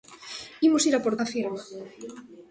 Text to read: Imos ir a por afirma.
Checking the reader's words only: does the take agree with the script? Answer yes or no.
yes